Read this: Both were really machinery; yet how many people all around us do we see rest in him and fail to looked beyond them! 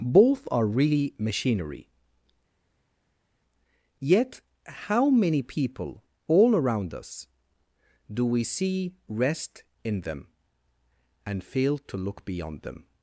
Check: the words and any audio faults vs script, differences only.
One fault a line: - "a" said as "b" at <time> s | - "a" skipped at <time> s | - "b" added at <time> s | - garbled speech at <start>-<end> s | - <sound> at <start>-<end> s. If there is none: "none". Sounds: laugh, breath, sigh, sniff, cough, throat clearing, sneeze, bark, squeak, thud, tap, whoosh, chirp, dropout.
- "were" said as "are" at 0.5 s
- "him" said as "them" at 10.0 s
- "looked" said as "look" at 12.0 s